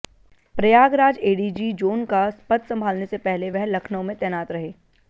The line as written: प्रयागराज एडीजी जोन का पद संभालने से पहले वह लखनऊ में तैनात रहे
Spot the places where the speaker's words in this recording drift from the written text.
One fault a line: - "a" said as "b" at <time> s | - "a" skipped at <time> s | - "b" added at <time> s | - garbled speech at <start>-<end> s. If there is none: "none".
none